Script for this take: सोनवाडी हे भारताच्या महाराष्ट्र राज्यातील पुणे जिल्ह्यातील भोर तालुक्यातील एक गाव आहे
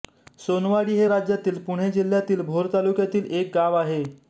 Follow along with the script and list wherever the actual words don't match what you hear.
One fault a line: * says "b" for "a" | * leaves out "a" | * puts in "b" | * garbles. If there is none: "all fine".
* leaves out "भारताच्या महाराष्ट्र"